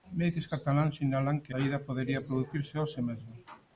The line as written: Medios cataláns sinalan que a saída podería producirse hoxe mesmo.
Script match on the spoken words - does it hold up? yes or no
no